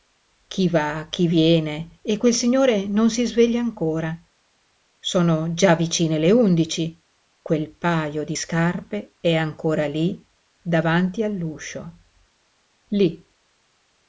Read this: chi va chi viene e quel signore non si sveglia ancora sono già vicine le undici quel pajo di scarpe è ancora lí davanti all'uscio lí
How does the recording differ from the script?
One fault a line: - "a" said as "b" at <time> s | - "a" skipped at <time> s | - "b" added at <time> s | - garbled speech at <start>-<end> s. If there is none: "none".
none